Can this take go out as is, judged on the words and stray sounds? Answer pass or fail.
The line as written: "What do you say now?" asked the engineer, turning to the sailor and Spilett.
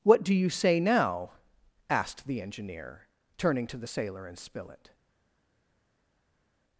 pass